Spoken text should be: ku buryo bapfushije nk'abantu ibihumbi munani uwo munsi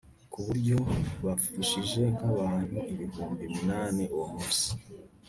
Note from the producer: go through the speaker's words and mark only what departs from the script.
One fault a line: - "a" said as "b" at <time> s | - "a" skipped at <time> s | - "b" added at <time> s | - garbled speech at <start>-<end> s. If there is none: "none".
none